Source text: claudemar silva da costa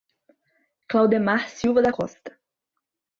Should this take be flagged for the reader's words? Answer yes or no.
no